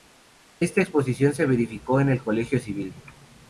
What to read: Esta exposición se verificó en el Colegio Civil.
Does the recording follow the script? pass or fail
pass